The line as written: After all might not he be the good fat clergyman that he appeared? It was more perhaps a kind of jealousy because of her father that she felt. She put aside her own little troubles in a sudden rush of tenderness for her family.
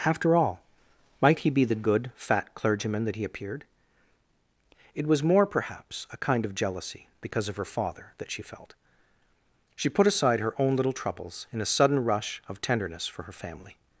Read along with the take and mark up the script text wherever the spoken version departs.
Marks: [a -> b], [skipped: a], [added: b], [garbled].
After all might [skipped: not] he be the good fat clergyman that he appeared? It was more perhaps a kind of jealousy because of her father that she felt. She put aside her own little troubles in a sudden rush of tenderness for her family.